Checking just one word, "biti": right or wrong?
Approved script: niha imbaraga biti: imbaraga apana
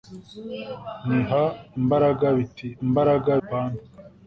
right